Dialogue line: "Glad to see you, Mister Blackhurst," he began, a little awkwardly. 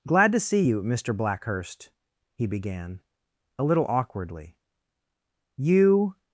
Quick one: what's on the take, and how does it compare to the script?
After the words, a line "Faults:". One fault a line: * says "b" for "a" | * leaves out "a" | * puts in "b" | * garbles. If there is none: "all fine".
"Glad to see you, Mister Blackhurst," he began, a little awkwardly. "You
Faults:
* puts in "You"